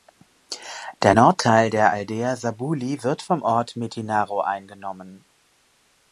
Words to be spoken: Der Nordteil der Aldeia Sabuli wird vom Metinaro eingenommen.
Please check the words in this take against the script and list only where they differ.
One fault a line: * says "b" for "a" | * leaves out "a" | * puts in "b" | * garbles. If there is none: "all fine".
* puts in "Ort"